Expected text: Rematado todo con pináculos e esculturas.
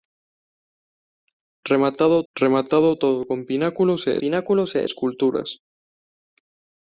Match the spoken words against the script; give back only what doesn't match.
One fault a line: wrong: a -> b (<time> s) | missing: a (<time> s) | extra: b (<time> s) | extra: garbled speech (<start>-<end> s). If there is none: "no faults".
extra: rematado (2.3 s)
extra: pináculos e (4.2 s)